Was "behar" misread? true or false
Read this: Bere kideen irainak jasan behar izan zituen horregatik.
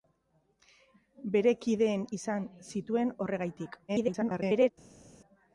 true